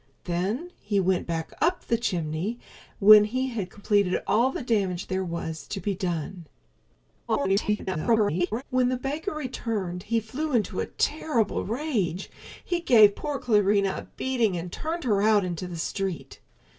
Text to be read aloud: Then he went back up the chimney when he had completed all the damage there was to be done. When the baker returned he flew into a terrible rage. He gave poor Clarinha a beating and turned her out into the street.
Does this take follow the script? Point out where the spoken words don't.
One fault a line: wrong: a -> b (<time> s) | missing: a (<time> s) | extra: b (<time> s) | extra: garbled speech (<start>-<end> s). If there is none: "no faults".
extra: garbled speech (7.3-8.6 s)